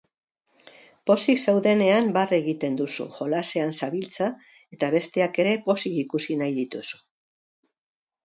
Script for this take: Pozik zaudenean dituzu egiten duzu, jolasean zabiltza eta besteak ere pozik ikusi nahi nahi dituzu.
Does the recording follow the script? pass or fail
fail